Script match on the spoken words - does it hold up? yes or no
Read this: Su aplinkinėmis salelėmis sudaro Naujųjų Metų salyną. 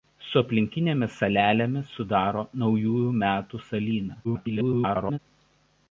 no